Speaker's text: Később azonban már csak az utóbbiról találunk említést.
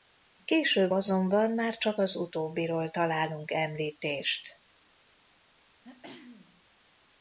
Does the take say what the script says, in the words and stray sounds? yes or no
no